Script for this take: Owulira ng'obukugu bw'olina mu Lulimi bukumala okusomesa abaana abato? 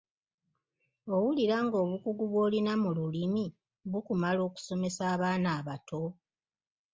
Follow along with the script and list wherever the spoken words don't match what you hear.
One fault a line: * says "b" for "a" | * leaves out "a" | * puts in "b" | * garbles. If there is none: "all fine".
all fine